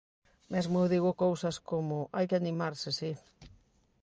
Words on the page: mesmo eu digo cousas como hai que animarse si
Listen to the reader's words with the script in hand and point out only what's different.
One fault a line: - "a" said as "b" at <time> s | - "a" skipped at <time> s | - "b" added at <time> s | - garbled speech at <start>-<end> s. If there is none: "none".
none